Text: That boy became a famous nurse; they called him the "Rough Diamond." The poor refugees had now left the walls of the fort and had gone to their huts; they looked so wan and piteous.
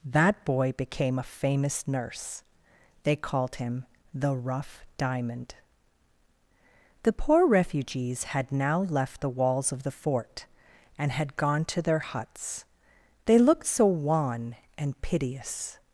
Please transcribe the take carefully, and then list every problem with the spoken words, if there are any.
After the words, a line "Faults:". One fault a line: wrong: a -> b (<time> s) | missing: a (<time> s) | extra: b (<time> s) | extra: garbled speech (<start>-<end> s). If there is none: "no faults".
That boy became a famous nurse; they called him the "Rough Diamond." The poor refugees had now left the walls of the fort and had gone to their huts; they looked so wan and piteous.
Faults:
no faults